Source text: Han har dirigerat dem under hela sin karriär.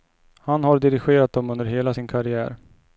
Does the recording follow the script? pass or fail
pass